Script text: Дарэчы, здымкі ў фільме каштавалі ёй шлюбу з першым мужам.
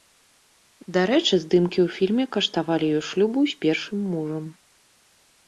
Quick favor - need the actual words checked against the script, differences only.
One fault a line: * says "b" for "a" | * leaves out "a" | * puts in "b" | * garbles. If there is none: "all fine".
all fine